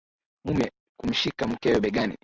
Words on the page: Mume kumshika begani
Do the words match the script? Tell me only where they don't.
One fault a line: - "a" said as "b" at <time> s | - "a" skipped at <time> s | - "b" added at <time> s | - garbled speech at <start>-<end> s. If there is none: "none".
- "mkewe" added at 1.5 s